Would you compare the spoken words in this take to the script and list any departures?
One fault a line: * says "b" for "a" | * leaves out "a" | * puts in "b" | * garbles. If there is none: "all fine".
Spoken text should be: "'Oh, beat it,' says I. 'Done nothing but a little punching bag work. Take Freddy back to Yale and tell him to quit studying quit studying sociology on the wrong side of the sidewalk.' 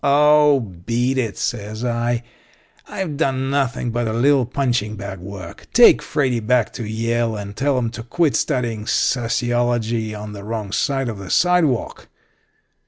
* puts in "I've"
* leaves out "quit studying"